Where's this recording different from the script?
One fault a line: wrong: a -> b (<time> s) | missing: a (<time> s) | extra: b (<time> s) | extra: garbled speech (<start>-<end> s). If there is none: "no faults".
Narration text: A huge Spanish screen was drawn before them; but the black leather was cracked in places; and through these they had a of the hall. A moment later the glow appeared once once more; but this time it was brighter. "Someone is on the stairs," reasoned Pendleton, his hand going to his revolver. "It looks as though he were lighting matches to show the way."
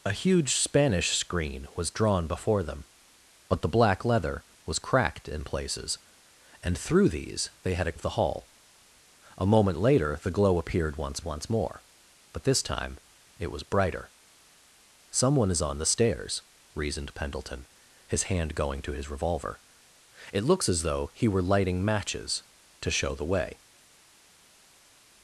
no faults